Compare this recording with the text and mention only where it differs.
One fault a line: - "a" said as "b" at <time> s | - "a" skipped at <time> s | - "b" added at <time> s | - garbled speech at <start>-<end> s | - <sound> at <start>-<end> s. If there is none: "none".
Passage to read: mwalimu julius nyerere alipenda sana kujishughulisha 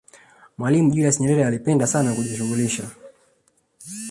none